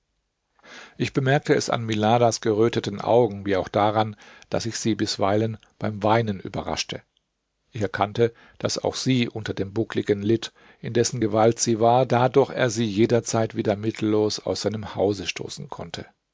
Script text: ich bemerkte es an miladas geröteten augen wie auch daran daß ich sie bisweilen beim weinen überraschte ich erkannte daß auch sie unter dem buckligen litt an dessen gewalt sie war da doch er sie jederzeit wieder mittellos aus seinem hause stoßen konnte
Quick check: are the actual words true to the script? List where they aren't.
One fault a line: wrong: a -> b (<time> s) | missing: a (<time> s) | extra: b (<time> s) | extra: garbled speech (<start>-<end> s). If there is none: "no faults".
wrong: an -> in (10.8 s)